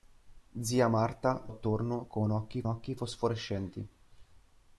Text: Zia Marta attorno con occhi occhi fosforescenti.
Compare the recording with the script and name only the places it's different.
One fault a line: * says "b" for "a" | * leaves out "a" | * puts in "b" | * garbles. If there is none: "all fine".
all fine